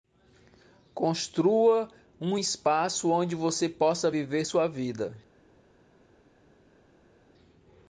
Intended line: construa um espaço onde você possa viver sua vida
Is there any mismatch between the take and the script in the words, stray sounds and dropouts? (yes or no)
no